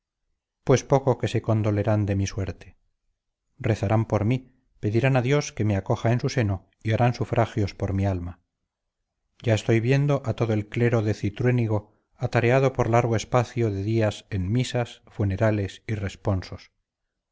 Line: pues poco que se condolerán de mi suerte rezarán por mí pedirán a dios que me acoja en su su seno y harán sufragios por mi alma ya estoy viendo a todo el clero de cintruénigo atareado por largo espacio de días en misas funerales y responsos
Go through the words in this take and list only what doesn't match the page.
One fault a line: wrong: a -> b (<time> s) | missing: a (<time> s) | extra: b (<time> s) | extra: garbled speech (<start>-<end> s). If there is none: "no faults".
missing: su (6.3 s)